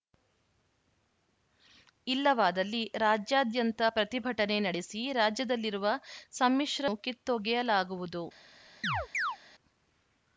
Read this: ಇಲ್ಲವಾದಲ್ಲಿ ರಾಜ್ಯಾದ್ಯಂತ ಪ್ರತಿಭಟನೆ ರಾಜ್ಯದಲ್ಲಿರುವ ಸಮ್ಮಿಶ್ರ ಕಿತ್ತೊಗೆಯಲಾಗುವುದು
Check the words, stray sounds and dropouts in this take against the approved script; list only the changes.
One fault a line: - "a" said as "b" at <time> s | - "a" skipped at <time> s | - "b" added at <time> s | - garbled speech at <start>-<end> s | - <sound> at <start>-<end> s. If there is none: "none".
- "ನಡೆಸಿ" added at 4.6 s
- chirp at 8.8-9.4 s